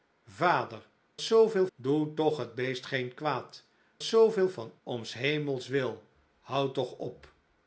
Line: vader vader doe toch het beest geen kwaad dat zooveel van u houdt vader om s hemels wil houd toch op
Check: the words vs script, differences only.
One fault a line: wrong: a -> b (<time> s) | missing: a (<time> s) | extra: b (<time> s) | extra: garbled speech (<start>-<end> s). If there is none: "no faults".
wrong: vader -> zooveel (1.2 s)
missing: dat (3.7 s)
missing: u houdt vader (4.7 s)